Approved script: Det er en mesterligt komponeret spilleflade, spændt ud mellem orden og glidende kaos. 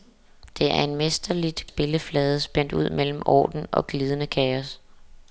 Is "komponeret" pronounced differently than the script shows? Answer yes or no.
yes